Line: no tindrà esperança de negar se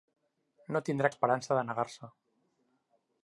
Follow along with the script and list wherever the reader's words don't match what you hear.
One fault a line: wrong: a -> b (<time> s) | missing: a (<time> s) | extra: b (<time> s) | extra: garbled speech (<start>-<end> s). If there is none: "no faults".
no faults